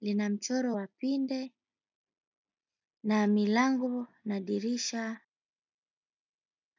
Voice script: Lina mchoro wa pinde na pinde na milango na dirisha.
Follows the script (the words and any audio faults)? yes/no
no